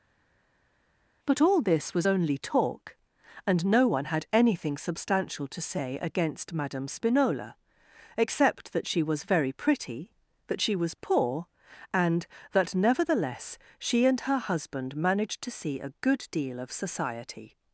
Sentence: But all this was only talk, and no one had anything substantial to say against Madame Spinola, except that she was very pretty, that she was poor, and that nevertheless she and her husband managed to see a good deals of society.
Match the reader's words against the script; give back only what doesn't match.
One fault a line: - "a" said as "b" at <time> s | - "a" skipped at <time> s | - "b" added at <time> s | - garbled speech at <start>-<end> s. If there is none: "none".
- "deals" said as "deal" at 16.3 s